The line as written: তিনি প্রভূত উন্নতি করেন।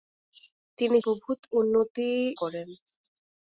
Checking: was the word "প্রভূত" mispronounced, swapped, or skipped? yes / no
no